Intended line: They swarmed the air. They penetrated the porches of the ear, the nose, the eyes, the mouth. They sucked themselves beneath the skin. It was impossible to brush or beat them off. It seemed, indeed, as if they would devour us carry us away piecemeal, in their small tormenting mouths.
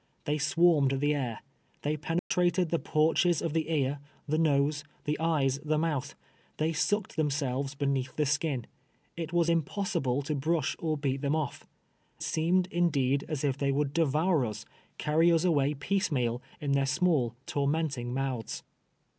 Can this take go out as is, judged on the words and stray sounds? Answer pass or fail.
fail